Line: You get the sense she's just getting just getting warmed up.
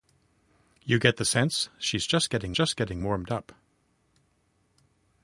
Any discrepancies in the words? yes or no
no